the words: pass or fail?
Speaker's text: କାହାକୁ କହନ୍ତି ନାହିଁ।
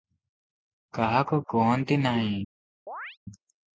pass